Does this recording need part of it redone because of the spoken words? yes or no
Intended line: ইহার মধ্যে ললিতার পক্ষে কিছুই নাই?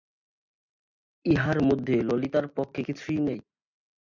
no